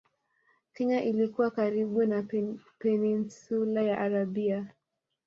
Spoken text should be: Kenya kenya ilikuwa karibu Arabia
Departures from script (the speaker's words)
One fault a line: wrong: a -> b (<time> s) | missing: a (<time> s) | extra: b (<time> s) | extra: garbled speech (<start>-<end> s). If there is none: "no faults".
missing: kenya (1.0 s)
extra: na Peninsula ya (2.0 s)